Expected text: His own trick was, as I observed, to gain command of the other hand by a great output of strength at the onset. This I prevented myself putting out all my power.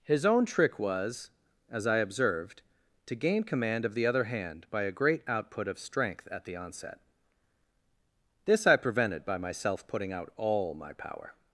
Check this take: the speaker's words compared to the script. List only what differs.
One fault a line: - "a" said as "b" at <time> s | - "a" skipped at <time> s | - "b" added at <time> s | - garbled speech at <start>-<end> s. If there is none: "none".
- "by" added at 9.2 s